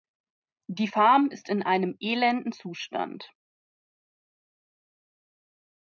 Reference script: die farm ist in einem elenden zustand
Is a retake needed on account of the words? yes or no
no